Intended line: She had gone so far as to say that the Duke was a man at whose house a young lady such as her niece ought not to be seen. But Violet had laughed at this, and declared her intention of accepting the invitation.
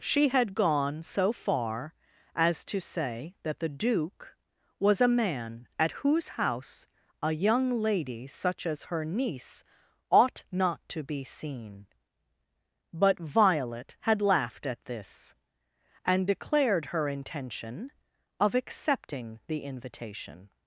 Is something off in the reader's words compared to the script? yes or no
no